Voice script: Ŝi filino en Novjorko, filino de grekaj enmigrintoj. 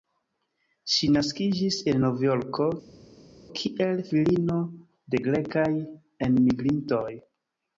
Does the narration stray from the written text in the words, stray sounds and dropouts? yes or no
yes